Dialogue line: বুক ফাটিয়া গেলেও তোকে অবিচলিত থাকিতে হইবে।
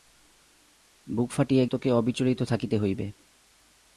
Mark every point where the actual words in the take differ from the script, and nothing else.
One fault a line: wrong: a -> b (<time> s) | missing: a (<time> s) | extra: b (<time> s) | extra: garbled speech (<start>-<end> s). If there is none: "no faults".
missing: গেলেও (1.6 s)